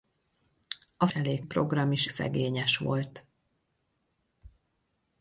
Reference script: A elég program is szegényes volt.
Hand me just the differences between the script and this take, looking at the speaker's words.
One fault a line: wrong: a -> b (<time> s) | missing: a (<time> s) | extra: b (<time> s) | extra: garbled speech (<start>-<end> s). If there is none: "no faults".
no faults